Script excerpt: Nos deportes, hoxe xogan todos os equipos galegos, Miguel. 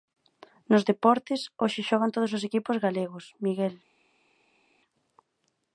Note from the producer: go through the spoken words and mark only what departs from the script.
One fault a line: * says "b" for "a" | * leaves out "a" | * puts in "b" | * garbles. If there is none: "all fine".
all fine